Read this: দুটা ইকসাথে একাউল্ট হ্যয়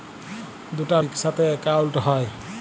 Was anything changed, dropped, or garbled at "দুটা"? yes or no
no